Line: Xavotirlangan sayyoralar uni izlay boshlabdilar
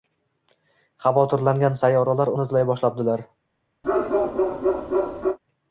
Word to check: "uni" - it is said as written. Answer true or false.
true